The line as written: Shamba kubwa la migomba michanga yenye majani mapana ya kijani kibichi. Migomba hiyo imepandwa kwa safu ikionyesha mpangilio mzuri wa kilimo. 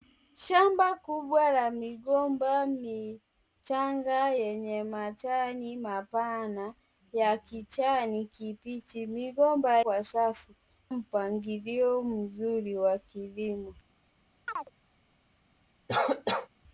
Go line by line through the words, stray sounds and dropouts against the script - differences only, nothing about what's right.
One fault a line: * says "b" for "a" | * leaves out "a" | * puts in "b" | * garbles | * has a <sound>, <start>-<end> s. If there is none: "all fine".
* leaves out "hiyo imepandwa"
* leaves out "ikionyesha"
* has a chirp, 14.5-14.7 s
* has a cough, 15.9-16.5 s